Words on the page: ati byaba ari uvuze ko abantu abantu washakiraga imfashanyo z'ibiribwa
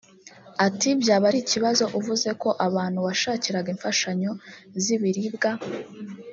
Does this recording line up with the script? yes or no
no